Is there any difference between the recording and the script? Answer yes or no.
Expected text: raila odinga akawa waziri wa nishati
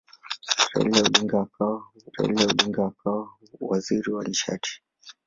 yes